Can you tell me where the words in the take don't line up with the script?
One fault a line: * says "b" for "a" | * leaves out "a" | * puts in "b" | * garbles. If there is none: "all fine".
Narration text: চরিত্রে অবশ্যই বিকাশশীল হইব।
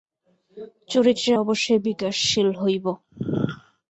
all fine